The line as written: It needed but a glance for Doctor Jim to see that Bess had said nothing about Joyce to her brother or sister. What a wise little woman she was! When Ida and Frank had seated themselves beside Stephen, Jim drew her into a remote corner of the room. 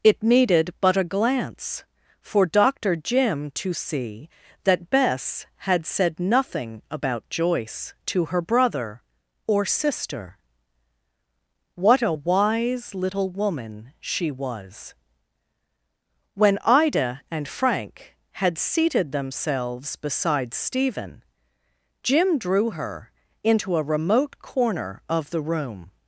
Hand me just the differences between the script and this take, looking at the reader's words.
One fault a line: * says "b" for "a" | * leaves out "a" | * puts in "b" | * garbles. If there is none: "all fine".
all fine